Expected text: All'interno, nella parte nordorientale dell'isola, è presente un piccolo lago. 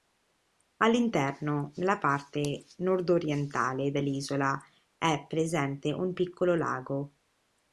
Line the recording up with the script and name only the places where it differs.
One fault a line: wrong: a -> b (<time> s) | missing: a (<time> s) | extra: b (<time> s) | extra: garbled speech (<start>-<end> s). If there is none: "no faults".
no faults